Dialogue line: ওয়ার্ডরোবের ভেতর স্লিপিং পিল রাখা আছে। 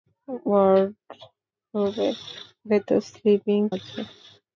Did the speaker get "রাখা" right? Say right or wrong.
wrong